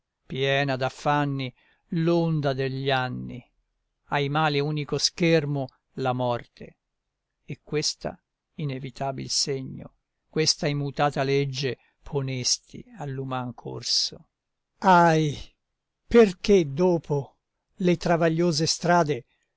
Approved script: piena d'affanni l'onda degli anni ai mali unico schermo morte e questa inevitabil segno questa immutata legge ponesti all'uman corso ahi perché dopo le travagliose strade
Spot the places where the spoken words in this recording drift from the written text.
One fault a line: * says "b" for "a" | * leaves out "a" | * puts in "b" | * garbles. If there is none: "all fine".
* puts in "la"